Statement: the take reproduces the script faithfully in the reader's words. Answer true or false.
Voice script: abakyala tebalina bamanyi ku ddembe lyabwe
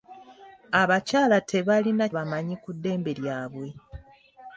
true